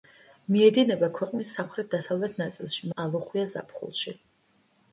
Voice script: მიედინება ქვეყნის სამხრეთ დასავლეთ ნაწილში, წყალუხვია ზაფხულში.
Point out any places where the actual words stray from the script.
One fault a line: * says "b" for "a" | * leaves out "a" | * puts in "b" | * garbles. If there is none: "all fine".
all fine